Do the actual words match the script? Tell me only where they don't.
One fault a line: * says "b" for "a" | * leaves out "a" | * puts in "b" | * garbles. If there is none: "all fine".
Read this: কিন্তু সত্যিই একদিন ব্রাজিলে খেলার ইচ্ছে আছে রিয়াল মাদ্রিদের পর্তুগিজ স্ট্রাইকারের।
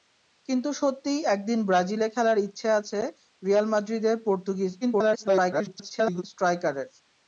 * garbles